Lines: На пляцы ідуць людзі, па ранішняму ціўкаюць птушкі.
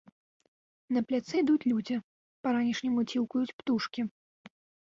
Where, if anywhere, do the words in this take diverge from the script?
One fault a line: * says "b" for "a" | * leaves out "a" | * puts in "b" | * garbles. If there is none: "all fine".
all fine